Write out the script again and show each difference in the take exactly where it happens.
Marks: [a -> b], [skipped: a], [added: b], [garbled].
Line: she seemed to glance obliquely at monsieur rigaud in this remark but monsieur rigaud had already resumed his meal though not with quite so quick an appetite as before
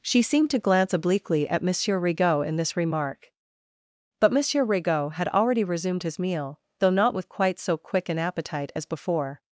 she seemed to glance obliquely at monsieur rigaud in this remark but monsieur rigaud had already resumed his meal though not with quite so quick an appetite as before